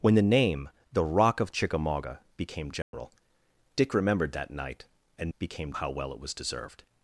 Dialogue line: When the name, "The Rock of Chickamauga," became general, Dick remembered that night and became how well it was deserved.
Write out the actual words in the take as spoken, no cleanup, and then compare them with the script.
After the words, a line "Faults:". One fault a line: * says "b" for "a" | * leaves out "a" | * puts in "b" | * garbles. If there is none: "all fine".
When the name, "The Rock of Chickamauga," became general, Dick remembered that night and became how well it was deserved.
Faults:
all fine